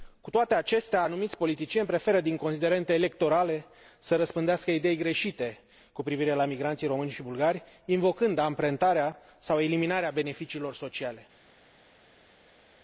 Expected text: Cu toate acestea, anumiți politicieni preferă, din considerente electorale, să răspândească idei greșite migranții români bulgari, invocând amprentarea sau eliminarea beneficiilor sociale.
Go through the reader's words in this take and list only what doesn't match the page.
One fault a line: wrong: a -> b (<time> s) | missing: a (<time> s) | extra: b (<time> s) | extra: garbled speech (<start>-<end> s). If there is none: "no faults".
extra: cu privire la (5.9 s)
extra: și (7.1 s)